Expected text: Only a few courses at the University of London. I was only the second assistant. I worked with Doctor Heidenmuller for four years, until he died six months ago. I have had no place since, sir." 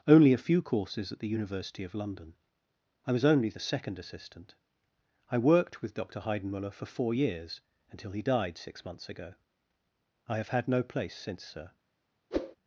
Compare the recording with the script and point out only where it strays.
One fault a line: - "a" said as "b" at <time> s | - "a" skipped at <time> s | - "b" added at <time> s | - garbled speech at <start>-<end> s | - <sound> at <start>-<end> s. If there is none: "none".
- whoosh at 12.3-12.6 s